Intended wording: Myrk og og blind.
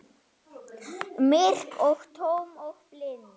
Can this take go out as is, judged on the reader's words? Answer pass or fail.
fail